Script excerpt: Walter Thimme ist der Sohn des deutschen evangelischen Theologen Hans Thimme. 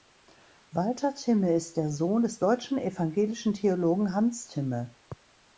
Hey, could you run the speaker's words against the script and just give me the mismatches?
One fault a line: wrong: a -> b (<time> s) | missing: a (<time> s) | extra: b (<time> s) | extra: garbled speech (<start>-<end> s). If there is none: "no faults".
no faults